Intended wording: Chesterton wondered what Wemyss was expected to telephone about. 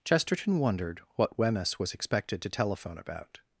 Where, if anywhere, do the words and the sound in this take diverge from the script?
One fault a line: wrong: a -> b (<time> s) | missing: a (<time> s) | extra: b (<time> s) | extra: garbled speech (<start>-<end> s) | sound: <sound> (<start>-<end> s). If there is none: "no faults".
no faults